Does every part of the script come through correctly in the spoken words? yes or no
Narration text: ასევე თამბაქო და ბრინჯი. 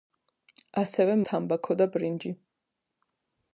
yes